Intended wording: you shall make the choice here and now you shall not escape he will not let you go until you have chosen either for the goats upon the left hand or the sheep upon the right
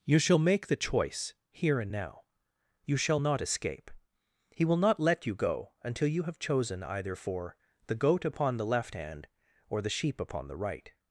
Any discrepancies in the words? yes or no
yes